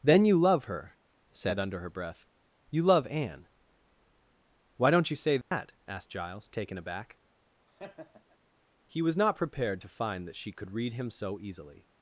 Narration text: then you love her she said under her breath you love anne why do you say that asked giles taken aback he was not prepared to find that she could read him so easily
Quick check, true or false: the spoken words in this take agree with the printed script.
false